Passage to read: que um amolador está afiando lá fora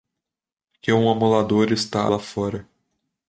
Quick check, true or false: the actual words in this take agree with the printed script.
false